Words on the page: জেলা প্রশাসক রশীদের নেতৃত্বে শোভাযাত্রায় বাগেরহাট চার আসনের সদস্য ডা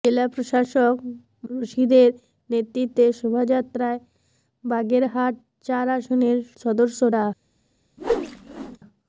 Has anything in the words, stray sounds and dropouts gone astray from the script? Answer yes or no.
yes